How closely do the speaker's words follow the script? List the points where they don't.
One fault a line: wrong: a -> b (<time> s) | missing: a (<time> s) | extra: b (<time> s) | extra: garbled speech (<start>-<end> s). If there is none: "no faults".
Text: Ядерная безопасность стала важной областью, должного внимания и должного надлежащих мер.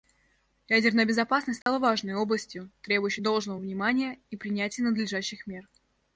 extra: требующей (2.8 s)
wrong: должного -> принятия (4.4 s)